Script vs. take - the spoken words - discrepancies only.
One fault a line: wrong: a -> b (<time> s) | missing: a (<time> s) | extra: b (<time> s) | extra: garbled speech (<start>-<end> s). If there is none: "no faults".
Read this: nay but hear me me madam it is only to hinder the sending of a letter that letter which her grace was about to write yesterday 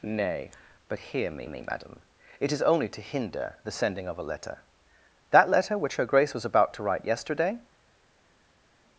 no faults